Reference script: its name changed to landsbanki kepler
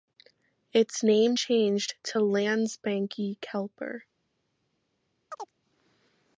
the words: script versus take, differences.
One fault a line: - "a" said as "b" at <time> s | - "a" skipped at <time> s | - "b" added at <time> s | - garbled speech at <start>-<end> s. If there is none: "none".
none